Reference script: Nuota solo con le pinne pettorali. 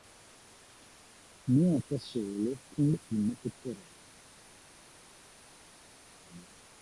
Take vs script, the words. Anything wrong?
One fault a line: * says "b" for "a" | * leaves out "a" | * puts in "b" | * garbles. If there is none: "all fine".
all fine